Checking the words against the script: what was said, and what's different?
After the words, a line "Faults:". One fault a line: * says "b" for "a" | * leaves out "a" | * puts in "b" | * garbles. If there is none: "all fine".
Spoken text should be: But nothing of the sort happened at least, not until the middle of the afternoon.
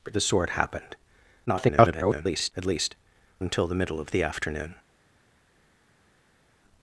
But the sort happened [garbled] at least, until the middle of the afternoon.
Faults:
* leaves out "nothing of"
* garbles
* leaves out "not"